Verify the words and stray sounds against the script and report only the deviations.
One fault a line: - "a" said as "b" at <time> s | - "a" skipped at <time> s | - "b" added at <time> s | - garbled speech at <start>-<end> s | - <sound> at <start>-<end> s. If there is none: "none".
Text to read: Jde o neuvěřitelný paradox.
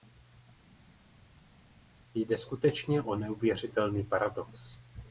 - "skutečně" added at 2.4 s